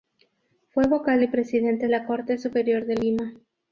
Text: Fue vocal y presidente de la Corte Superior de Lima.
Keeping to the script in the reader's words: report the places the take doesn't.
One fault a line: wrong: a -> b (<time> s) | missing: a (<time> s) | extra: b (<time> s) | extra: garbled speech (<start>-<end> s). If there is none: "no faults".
missing: de (1.9 s)